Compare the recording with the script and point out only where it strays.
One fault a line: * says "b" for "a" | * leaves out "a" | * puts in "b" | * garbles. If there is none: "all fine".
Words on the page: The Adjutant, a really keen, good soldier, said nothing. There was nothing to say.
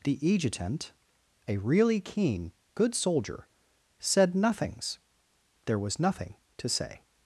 * says "nothings" for "nothing"